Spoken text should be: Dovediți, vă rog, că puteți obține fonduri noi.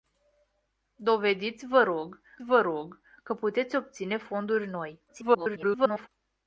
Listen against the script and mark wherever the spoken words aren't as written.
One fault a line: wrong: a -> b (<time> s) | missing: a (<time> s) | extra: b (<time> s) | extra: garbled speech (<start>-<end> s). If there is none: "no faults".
extra: vă rog (2.4 s)
extra: garbled speech (5.1-6.1 s)